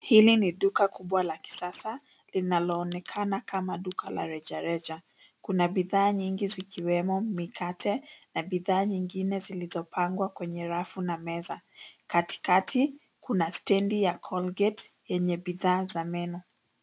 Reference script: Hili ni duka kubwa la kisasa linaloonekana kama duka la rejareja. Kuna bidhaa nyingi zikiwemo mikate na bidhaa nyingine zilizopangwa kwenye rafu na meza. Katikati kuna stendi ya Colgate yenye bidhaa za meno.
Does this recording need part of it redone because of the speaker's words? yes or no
no